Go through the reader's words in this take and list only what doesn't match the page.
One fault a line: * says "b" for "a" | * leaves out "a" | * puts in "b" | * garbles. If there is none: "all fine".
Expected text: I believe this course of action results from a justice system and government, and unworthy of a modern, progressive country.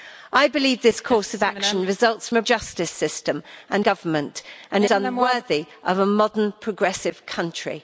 all fine